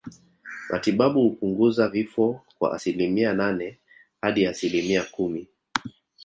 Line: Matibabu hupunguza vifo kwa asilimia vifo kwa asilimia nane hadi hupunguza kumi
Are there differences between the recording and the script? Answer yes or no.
yes